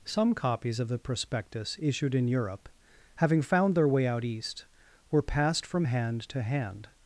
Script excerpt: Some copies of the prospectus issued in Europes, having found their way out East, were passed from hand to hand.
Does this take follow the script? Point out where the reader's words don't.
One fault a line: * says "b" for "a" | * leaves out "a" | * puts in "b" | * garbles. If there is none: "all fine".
* says "Europe" for "Europes"